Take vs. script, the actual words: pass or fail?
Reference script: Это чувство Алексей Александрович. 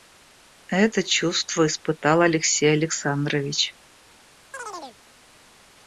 fail